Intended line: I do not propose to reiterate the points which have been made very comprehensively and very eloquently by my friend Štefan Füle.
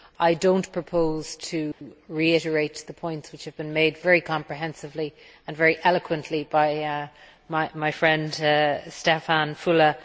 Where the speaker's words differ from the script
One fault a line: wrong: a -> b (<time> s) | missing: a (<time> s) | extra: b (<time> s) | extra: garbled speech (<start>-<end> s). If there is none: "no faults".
no faults